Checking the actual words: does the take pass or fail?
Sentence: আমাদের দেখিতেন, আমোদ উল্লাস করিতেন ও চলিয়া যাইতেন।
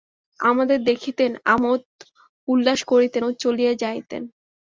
pass